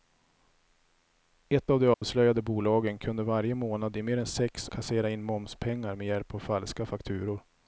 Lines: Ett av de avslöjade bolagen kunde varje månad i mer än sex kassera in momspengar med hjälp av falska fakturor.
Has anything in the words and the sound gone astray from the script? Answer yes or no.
yes